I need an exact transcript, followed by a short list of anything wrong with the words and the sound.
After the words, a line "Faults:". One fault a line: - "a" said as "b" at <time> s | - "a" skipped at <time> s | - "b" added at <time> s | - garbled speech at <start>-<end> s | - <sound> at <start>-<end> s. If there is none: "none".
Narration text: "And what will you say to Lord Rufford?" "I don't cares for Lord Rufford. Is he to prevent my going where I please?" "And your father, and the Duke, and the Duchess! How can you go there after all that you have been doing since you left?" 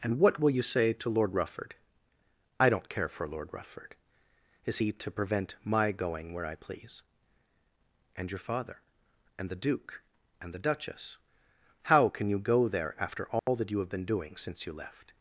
"And what will you say to Lord Rufford?" "I don't care for Lord Rufford. Is he to prevent my going where I please?" "And your father, and the Duke, and the Duchess! How can you go there after all that you have been doing since you left?"
Faults:
- "cares" said as "care" at 2.9 s
- dropout at 13.4-13.5 s